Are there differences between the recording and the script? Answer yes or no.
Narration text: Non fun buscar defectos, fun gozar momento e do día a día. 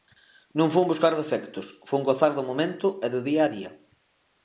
yes